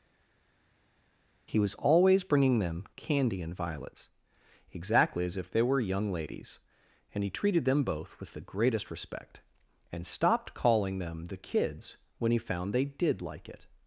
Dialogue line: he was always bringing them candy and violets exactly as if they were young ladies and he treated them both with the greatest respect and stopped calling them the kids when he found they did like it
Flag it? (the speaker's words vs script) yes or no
no